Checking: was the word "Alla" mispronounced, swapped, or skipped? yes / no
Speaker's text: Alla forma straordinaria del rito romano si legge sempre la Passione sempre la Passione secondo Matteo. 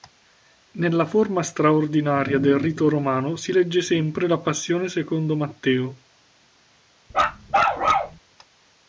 yes